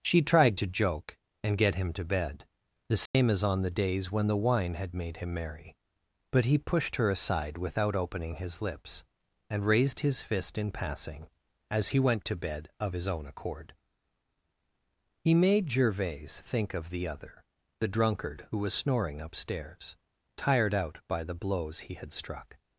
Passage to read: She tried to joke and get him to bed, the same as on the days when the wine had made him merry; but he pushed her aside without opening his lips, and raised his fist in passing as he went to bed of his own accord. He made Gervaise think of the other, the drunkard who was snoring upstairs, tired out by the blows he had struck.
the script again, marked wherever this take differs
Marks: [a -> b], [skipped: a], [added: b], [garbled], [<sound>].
She tried to joke and get him to bed, the same [dropout] as on the days when the wine had made him merry; but he pushed her aside without opening his lips, and raised his fist in passing as he went to bed of his own accord. He made Gervaise think of the other, the drunkard who was snoring upstairs, tired out by the blows he had struck.